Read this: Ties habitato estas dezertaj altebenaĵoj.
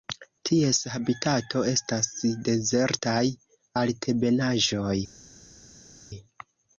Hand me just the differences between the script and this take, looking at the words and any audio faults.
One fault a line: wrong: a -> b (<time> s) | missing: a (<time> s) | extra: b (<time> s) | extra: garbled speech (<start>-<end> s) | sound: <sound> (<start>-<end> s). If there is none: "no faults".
no faults